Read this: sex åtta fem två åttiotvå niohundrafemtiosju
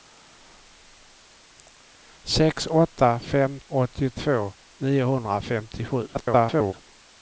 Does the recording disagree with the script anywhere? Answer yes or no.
yes